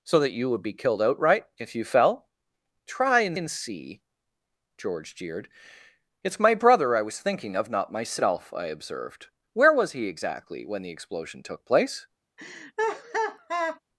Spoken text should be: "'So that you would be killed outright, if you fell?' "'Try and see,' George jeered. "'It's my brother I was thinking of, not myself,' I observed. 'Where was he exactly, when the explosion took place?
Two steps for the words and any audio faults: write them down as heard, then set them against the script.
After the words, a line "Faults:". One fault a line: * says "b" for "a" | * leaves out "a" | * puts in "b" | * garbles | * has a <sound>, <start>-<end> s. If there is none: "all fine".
"'So that you would be killed outright, if you fell?' "'Try and and see,' George jeered. "'It's my brother I was thinking of, not myself,' I observed. 'Where was he exactly, when the explosion took place?
Faults:
* puts in "and"
* has a laugh, 12.4-13.8 s